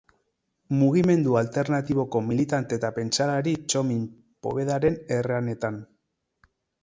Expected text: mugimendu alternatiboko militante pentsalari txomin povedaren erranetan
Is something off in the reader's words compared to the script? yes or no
yes